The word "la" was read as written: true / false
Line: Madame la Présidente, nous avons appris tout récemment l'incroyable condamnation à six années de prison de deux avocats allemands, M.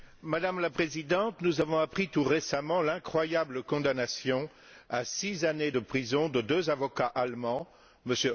true